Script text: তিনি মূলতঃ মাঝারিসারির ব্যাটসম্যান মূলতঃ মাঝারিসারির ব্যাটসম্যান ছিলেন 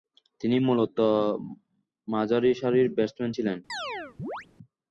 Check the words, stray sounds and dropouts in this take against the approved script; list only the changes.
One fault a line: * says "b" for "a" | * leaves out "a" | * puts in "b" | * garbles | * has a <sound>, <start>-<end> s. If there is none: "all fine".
* leaves out "মূলতঃ মাঝারিসারির ব্যাটসম্যান"
* has a chirp, 3.7-4.5 s